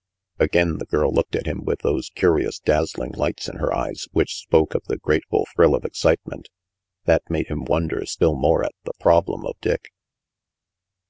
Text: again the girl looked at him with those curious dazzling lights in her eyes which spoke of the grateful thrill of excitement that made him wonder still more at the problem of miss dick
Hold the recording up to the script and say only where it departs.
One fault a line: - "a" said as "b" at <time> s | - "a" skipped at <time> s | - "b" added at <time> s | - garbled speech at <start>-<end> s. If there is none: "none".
- "miss" skipped at 9.6 s